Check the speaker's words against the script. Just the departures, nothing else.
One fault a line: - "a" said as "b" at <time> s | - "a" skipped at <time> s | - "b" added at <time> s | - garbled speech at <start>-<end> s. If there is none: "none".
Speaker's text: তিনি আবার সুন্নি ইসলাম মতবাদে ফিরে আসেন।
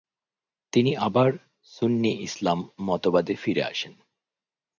none